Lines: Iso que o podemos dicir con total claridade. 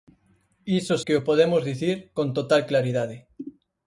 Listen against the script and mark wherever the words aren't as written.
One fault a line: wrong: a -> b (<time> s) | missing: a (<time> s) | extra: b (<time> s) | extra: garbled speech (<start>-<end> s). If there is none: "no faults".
no faults